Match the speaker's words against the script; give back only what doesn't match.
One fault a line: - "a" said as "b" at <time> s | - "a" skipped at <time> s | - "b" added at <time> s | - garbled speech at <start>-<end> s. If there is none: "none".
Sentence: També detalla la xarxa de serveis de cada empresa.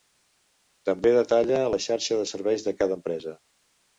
none